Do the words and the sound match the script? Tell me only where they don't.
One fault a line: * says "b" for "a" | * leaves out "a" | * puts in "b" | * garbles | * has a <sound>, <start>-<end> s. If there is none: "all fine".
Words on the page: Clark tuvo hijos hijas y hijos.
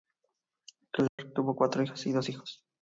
* has a dropout, 1.1-1.2 s
* says "cuatro" for "hijos"
* puts in "dos"